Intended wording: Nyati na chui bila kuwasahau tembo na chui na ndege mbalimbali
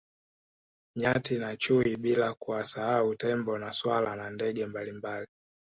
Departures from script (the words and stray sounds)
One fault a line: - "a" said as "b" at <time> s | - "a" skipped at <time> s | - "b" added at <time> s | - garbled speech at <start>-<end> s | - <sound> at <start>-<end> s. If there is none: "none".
- "chui" said as "swala" at 3.7 s